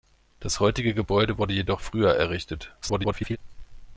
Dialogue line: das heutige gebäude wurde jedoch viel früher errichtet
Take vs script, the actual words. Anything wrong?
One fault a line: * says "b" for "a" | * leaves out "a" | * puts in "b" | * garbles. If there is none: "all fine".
* leaves out "viel"
* garbles